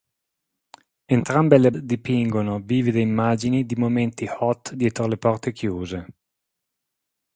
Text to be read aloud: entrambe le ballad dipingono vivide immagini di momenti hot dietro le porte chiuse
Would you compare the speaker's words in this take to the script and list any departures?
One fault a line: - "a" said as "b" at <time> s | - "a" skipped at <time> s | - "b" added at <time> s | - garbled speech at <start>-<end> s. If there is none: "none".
- "ballad" skipped at 1.7 s